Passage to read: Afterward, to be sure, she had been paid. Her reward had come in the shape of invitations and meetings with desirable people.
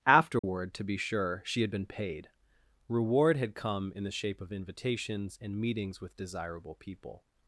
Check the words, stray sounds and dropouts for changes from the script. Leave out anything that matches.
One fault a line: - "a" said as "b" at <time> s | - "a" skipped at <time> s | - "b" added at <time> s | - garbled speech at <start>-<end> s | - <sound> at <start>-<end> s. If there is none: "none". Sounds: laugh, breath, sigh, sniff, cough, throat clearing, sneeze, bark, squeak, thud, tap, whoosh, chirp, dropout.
- dropout at 0.4-0.4 s
- "Her" skipped at 2.3 s